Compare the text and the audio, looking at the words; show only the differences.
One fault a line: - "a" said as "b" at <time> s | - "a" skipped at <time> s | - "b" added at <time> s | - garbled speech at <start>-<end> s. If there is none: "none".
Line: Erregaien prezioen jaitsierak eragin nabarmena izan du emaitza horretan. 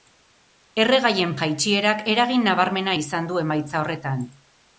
- "prezioen" skipped at 1.3 s